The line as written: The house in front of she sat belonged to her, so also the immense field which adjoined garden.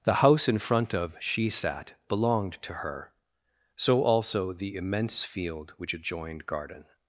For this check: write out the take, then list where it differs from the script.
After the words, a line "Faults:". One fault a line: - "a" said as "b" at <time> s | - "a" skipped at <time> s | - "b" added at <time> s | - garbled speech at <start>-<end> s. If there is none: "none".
The house in front of she sat belonged to her, so also the immense field which adjoined garden.
Faults:
none